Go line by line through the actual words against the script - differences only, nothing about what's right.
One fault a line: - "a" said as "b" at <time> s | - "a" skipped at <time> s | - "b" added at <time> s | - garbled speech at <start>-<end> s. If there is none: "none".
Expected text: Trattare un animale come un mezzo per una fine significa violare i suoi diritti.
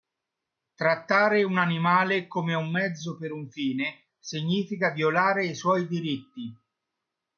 - "una" said as "un" at 3.3 s